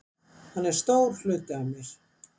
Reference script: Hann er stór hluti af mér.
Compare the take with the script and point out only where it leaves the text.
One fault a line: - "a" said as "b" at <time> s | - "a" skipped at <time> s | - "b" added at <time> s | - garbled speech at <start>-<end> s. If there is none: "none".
none